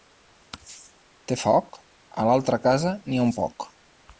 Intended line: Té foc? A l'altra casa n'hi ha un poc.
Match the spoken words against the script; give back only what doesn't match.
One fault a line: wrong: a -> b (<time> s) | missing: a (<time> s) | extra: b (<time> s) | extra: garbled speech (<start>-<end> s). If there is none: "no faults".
no faults